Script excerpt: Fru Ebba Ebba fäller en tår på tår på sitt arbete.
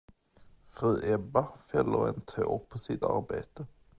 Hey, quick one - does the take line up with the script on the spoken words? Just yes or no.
no